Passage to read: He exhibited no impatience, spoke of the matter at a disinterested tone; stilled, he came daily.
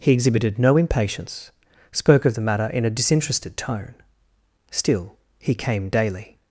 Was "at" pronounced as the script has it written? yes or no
no